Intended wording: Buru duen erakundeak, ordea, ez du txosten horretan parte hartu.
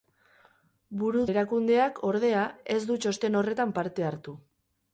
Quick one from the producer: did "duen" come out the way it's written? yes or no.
no